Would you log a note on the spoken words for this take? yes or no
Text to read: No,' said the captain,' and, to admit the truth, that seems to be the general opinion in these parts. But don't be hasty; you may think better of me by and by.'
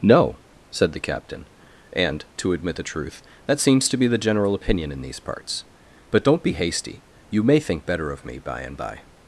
no